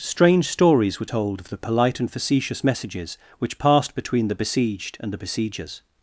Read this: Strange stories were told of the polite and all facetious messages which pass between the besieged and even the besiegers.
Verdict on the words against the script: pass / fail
fail